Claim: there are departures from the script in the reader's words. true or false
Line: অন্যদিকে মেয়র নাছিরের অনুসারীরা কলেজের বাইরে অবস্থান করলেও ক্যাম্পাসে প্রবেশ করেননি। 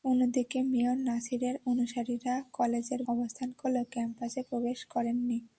true